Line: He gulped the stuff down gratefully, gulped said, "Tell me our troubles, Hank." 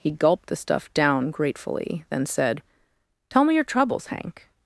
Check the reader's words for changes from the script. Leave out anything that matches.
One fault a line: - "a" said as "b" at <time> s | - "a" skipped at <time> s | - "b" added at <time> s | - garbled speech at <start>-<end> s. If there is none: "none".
- "gulped" said as "then" at 2.1 s
- "our" said as "your" at 3.5 s